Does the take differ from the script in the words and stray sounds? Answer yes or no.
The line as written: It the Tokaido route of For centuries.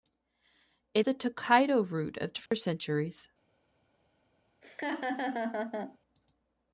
yes